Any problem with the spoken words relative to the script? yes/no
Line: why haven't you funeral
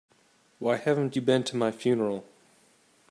yes